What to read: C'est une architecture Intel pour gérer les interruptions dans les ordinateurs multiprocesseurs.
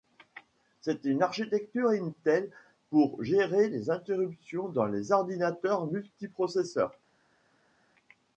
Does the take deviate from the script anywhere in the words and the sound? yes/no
no